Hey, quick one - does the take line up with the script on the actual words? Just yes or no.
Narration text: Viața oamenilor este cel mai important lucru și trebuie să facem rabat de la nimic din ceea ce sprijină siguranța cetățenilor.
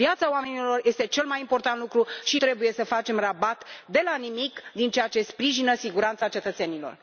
yes